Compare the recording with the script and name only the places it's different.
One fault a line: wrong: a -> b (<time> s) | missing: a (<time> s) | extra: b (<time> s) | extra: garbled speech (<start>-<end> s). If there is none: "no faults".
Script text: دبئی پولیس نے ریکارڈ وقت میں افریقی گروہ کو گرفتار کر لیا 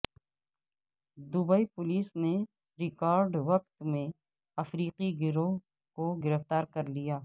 no faults